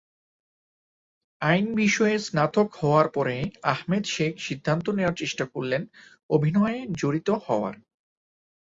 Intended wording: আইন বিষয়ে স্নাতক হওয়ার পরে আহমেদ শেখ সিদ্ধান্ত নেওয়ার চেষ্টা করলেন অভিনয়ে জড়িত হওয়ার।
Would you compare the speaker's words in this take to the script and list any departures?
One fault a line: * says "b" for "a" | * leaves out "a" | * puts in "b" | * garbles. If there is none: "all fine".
all fine